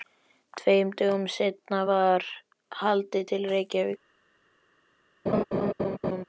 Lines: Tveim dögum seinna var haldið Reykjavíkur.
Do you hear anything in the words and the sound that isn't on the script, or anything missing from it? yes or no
yes